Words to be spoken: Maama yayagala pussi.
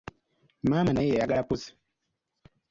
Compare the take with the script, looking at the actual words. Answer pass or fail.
fail